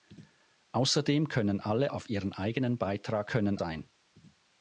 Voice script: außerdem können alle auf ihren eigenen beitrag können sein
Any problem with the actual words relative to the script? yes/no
no